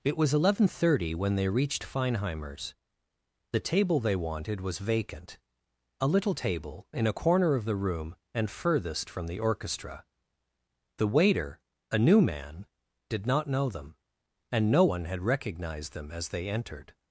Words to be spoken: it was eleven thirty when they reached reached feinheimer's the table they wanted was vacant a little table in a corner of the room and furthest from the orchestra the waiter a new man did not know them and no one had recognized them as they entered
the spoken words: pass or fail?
fail